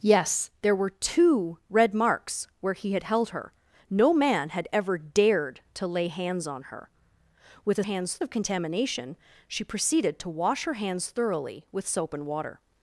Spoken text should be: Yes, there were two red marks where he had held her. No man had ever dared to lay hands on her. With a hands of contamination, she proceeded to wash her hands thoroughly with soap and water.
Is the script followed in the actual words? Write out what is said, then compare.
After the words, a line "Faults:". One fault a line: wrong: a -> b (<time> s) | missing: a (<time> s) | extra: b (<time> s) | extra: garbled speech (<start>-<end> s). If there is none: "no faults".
Yes, there were two red marks where he had held her. No man had ever dared to lay hands on her. With a hands of contamination, she proceeded to wash her hands thoroughly with soap and water.
Faults:
no faults